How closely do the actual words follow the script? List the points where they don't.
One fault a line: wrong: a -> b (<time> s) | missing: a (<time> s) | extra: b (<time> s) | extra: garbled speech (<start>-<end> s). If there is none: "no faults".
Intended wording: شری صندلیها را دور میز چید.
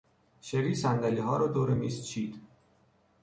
no faults